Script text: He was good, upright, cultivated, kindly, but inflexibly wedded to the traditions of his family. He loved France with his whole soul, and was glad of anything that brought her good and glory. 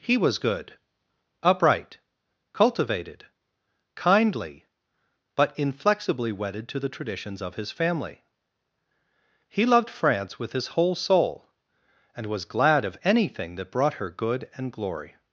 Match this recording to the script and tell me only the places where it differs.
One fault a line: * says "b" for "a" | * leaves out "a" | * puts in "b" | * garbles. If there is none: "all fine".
all fine